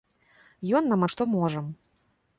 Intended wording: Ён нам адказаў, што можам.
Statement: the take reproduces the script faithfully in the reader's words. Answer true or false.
false